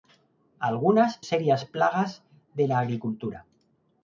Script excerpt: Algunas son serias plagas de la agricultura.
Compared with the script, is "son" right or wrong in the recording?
wrong